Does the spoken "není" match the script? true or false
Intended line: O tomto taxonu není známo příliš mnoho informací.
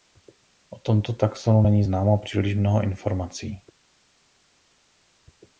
true